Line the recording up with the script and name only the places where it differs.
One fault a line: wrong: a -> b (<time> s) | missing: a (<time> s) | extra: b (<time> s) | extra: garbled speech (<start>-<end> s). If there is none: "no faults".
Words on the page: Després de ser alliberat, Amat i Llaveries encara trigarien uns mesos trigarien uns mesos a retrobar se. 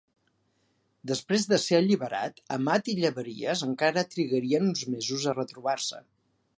missing: trigarien uns mesos (5.3 s)